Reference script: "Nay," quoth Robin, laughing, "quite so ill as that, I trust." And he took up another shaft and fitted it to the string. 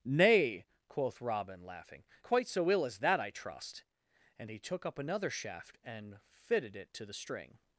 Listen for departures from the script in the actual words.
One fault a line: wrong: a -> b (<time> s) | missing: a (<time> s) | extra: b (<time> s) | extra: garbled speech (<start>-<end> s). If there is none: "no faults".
no faults